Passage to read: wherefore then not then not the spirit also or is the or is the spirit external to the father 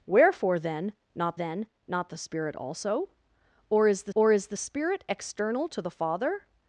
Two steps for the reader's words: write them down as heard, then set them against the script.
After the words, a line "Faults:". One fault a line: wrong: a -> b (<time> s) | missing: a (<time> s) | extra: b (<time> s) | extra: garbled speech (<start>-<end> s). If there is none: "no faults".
wherefore then not then not the spirit also or is the or is the spirit external to the father
Faults:
no faults